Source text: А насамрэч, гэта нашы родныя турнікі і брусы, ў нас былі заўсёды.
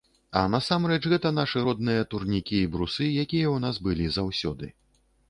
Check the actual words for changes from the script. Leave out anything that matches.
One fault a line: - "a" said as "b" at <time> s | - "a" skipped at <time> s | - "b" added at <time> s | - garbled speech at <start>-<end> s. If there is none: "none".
- "якія" added at 3.2 s